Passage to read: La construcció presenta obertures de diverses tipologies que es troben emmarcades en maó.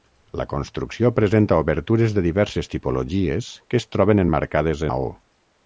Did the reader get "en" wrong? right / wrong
wrong